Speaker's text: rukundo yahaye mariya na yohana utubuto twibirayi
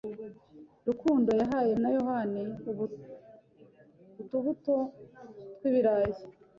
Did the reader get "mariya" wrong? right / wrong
wrong